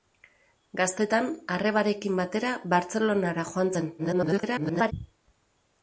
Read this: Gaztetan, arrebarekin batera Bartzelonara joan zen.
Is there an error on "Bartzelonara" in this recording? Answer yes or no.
no